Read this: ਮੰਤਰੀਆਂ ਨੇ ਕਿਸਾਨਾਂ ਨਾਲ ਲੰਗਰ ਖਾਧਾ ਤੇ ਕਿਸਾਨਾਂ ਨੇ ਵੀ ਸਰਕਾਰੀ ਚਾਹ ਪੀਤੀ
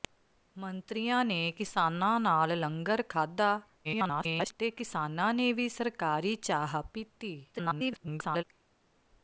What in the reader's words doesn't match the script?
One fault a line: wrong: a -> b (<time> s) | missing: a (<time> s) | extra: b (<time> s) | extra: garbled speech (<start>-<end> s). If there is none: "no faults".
extra: garbled speech (3.8-4.5 s)
extra: garbled speech (7.5-8.4 s)